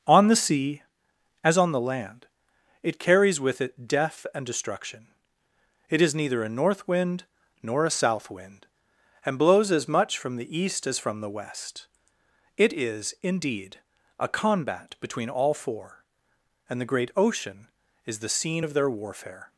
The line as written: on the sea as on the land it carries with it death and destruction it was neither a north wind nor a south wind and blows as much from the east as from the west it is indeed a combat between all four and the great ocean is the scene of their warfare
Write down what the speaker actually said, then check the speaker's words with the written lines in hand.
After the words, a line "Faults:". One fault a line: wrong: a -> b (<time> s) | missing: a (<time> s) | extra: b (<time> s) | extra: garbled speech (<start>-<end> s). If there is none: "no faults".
on the sea as on the land it carries with it death and destruction it is neither a north wind nor a south wind and blows as much from the east as from the west it is indeed a combat between all four and the great ocean is the scene of their warfare
Faults:
wrong: was -> is (6.0 s)